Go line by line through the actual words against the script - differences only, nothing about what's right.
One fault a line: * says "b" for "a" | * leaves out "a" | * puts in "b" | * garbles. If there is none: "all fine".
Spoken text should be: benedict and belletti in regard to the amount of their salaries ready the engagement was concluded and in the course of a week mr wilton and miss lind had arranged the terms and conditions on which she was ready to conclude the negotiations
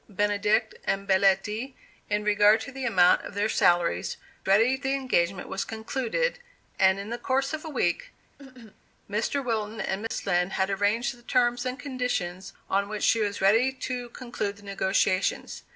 all fine